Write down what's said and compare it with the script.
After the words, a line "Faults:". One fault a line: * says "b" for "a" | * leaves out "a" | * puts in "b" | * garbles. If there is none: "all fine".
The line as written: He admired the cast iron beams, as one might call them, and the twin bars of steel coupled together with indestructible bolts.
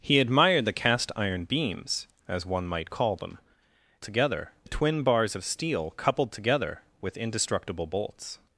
He admired the cast iron beams, as one might call them, together the twin bars of steel coupled together with indestructible bolts.
Faults:
* says "together" for "and"